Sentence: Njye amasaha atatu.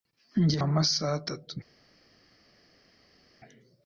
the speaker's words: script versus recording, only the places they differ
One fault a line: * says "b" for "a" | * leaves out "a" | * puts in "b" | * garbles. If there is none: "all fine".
all fine